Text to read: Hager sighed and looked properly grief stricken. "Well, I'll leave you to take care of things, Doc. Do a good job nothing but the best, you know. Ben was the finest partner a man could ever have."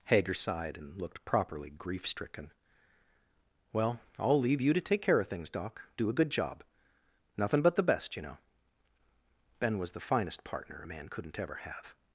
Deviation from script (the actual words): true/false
true